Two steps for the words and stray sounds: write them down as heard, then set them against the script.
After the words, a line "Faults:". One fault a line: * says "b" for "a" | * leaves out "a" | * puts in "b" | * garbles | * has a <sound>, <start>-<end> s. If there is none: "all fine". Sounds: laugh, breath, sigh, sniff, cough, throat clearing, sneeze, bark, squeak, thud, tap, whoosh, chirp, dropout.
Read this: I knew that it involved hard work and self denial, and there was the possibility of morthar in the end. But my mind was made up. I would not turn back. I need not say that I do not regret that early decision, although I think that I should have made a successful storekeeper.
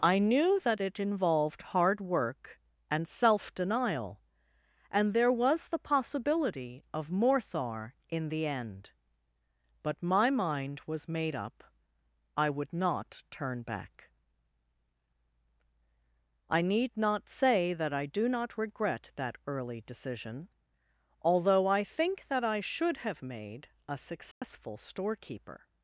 I knew that it involved hard work and self denial, and there was the possibility of morthar in the end. But my mind was made up. I would not turn back. I need not say that I do not regret that early decision, although I think that I should have made a successful storekeeper.
Faults:
* has a dropout, 24.3-24.4 s